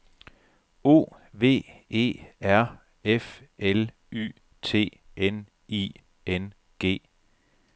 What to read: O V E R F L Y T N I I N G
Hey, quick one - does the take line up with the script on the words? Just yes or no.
no